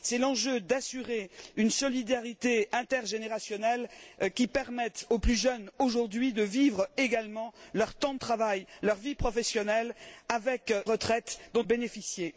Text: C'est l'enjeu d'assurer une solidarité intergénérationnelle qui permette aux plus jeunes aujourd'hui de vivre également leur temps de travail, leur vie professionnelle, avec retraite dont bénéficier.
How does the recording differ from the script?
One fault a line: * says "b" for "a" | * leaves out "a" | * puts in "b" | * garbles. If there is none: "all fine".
all fine